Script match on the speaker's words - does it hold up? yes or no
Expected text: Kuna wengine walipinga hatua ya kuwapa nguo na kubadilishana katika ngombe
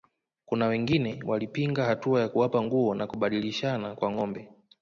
no